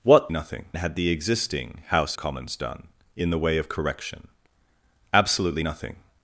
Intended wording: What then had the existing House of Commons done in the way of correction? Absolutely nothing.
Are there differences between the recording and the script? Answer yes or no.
yes